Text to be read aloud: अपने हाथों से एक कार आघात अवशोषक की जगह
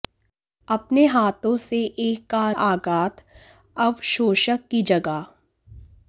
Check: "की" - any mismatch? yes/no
no